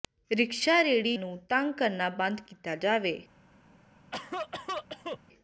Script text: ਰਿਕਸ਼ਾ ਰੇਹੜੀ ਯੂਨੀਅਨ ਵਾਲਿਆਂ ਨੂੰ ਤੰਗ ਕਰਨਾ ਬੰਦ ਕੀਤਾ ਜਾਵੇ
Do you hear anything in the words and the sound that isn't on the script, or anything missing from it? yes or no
yes